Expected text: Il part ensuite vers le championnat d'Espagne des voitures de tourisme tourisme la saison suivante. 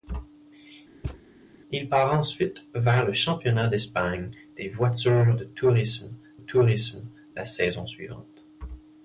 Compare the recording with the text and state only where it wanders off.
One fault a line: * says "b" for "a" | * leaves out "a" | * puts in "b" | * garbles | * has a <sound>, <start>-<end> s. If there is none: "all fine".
* has a thud, 1.0-1.2 s